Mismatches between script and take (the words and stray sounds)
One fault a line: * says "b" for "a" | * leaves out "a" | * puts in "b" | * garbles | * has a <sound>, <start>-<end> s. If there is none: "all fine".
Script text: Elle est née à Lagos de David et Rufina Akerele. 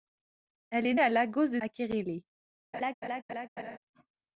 * leaves out "née"
* leaves out "David et Rufina"
* has a laugh, 2.7-3.8 s